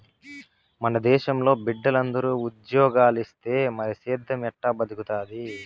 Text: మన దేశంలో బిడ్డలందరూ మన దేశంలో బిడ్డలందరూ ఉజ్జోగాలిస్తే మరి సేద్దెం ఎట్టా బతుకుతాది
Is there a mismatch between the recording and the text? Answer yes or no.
yes